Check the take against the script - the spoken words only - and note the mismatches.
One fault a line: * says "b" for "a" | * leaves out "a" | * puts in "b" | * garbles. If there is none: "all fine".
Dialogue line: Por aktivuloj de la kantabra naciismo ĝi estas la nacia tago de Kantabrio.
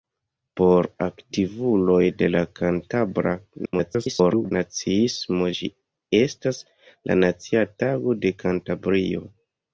* garbles